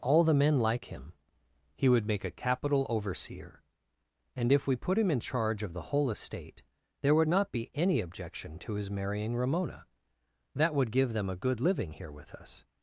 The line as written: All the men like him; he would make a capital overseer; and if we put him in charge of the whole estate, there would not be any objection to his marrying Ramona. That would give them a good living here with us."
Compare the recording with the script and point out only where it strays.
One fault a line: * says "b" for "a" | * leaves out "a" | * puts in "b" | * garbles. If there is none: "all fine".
all fine